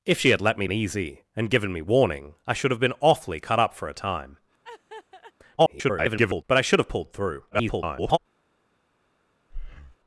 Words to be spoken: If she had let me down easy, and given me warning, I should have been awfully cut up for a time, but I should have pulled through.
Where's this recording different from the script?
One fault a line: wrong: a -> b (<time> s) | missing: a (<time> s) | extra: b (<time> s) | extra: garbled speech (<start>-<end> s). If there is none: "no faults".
missing: down (0.7 s)
extra: garbled speech (5.6-6.4 s)
extra: garbled speech (7.5-8.2 s)